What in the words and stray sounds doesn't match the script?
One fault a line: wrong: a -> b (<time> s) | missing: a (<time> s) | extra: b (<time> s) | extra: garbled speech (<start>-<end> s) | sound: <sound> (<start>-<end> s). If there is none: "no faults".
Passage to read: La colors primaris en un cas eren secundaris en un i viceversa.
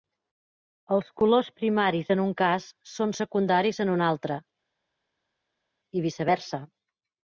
wrong: La -> Els (0.9 s)
wrong: eren -> són (2.9 s)
extra: altre (4.1 s)